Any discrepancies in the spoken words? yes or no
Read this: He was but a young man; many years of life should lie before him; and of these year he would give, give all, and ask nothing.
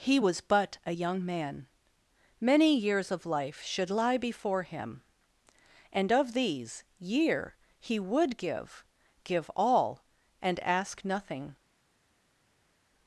no